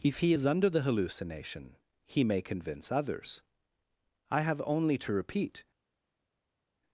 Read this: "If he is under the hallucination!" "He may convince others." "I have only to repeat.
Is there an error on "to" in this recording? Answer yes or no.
no